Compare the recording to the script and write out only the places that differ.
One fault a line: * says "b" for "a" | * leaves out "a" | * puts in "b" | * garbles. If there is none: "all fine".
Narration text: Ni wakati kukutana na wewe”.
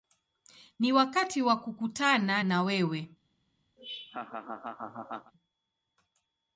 * puts in "wa"